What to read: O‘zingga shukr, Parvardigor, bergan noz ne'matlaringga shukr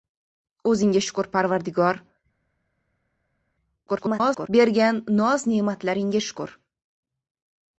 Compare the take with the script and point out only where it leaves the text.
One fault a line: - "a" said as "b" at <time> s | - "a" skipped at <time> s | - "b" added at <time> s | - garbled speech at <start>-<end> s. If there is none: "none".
- garbled speech at 3.9-4.5 s